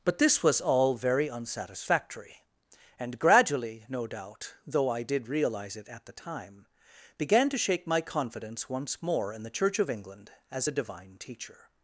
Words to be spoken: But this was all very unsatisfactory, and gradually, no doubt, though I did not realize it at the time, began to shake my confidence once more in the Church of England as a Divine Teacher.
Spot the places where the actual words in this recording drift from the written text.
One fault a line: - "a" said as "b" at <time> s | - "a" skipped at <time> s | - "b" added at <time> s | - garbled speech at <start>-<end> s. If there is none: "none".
- "not" skipped at 5.3 s